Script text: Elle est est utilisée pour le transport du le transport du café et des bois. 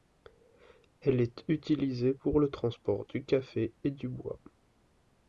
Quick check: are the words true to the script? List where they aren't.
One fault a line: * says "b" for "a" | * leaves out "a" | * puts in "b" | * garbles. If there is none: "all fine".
* leaves out "est"
* leaves out "le transport du"
* says "du" for "des"